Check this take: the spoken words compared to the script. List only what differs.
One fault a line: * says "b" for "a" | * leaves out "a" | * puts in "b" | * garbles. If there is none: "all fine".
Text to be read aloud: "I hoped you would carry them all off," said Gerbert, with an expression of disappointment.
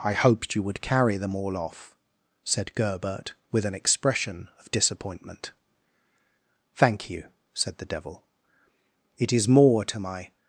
* puts in "Thank you said the Devil It is more to my"